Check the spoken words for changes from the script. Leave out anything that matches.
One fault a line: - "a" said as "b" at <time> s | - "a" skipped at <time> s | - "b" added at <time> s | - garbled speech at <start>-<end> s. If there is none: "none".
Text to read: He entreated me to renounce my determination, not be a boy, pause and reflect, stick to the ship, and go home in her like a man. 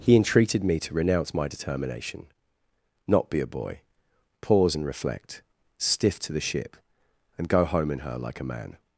- "stick" said as "stiff" at 5.8 s